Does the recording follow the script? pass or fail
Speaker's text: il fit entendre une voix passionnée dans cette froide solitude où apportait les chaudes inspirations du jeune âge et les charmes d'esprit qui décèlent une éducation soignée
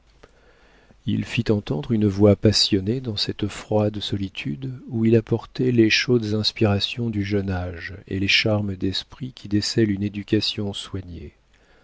fail